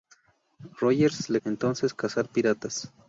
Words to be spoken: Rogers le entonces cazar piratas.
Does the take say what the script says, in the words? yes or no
yes